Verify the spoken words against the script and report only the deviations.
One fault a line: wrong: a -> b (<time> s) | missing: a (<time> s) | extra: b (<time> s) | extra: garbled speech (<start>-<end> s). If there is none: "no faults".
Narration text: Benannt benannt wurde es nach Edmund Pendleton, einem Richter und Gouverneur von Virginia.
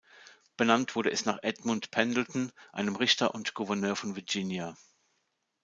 missing: benannt (1.0 s)